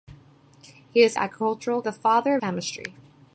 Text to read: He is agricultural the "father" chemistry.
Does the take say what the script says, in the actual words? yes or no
yes